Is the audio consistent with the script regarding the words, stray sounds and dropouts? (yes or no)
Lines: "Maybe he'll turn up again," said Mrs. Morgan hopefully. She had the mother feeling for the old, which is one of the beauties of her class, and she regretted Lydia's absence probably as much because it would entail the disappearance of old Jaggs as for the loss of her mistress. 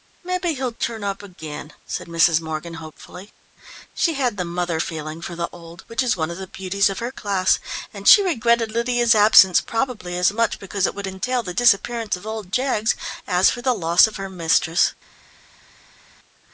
yes